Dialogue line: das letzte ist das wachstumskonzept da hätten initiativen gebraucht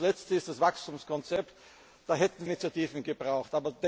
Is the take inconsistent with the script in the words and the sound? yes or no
no